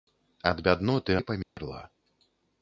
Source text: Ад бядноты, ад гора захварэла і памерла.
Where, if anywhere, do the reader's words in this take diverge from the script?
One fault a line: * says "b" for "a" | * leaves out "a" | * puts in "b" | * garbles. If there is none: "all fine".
* leaves out "ад гора захварэла"